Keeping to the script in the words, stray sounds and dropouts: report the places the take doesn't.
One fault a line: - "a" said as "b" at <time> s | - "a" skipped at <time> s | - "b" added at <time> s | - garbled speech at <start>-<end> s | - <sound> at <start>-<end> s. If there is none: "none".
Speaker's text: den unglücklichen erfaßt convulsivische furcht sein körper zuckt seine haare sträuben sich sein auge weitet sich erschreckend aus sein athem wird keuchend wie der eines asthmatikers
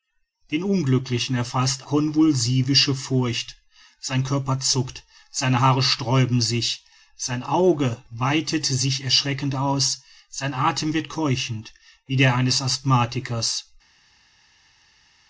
none